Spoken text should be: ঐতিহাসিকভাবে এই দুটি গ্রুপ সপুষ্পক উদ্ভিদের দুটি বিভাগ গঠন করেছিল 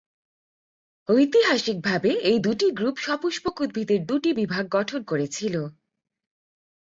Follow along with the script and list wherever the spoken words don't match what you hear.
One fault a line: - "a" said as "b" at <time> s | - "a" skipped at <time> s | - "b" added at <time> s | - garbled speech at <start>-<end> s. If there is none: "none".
none